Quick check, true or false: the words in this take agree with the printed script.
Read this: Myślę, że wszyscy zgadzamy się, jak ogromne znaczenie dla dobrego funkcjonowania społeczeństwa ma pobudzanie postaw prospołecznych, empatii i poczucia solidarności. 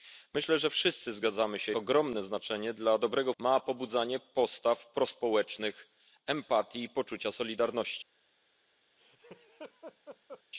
false